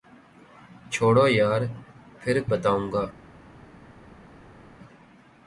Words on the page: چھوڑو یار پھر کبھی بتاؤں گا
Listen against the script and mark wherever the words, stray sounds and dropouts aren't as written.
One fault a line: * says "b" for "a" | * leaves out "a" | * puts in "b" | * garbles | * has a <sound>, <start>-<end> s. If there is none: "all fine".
* leaves out "کبھی"